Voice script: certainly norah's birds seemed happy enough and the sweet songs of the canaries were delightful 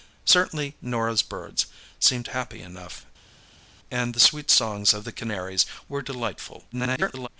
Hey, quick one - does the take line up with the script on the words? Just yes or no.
no